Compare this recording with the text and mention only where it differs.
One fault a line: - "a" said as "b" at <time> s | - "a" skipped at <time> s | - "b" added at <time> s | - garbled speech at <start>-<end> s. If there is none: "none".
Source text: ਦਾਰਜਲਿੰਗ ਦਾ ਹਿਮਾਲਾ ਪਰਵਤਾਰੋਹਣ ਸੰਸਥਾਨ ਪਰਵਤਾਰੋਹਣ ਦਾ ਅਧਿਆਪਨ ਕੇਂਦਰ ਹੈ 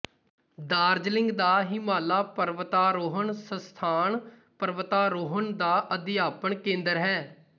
none